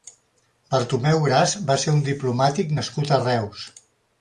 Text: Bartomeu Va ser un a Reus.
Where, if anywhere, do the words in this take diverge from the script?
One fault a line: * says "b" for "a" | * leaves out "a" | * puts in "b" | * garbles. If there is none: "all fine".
* puts in "Gras"
* puts in "diplomàtic nascut"